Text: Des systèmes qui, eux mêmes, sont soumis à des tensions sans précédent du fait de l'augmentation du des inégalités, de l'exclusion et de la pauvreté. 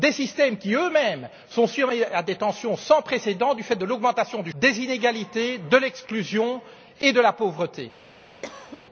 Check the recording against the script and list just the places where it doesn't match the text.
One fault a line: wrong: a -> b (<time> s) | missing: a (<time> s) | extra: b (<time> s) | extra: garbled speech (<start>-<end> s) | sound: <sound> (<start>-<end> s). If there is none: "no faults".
sound: cough (8.4-8.8 s)